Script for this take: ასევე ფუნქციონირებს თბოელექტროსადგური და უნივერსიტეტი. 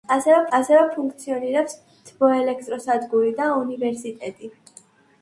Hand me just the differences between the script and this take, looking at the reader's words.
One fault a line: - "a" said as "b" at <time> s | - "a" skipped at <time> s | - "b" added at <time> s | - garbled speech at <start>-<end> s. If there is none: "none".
- "ასევე" added at 0.6 s